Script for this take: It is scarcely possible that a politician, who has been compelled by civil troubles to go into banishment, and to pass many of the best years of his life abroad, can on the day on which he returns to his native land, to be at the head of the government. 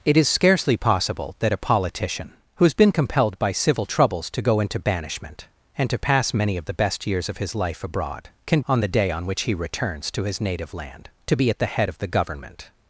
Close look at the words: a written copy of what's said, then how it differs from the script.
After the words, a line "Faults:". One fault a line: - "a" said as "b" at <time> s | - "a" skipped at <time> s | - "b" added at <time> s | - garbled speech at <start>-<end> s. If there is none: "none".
It is scarcely possible that a politician, who has been compelled by civil troubles to go into banishment, and to pass many of the best years of his life abroad, can on the day on which he returns to his native land, to be at the head of the government.
Faults:
none